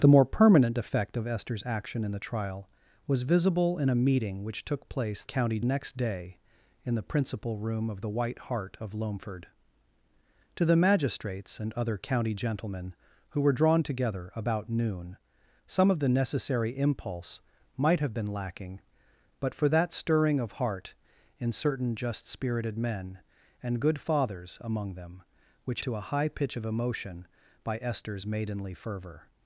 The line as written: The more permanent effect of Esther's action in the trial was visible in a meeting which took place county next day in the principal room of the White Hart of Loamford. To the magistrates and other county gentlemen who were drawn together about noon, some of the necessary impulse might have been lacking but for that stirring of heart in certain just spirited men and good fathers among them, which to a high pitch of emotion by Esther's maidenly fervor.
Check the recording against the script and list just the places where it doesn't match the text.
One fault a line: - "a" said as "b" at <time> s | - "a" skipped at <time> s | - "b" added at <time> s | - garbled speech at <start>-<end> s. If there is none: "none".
none